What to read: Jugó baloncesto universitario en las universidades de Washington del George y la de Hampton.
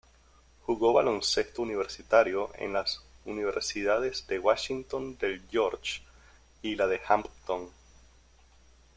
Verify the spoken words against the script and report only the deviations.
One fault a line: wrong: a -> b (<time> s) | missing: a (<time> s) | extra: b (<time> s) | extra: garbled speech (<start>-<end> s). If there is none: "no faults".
no faults